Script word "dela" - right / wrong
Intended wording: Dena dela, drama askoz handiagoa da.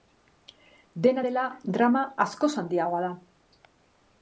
right